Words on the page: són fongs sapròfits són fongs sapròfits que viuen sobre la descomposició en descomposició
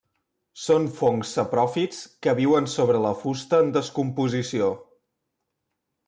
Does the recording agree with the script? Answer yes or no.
no